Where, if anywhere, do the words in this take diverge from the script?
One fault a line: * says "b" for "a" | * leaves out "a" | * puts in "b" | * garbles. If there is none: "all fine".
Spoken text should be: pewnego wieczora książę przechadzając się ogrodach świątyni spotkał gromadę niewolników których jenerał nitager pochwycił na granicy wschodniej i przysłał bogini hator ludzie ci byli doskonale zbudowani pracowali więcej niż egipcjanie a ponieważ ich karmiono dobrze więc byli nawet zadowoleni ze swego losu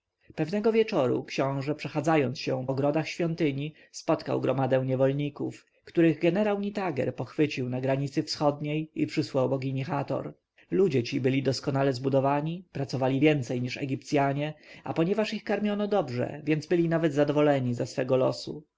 all fine